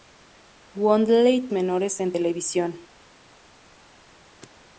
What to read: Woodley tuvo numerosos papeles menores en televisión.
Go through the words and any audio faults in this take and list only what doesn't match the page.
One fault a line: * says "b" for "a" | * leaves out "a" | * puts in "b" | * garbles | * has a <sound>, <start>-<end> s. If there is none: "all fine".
* leaves out "tuvo numerosos papeles"